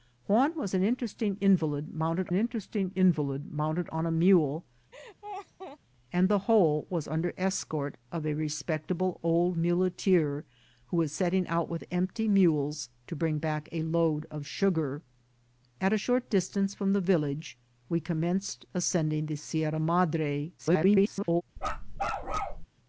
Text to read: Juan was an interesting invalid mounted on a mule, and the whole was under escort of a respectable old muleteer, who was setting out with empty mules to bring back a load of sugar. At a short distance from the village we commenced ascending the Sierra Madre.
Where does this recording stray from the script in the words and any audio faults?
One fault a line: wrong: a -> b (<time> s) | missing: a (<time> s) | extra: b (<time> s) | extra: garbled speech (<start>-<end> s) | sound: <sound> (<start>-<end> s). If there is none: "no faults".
extra: interesting invalid mounted (2.3 s)
sound: laugh (4.9-5.8 s)
extra: garbled speech (20.6-21.4 s)
sound: bark (21.6-22.7 s)